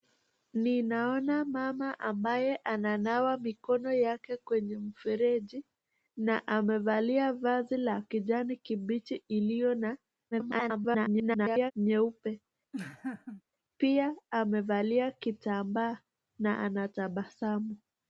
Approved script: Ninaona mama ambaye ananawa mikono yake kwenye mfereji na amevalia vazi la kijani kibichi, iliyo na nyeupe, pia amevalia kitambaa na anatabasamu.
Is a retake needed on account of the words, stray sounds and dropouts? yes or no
yes